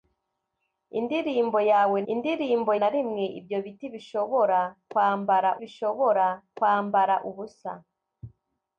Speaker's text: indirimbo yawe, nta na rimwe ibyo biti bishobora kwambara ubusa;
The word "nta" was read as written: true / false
false